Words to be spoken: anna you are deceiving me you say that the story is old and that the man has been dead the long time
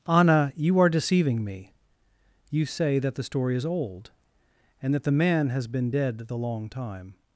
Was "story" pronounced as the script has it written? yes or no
yes